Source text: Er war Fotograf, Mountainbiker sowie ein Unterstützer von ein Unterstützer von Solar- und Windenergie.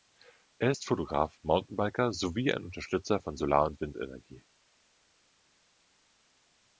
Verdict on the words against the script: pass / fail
fail